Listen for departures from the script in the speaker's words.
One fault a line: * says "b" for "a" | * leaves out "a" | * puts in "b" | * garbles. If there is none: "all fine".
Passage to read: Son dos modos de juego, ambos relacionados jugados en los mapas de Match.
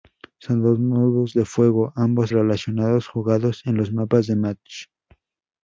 all fine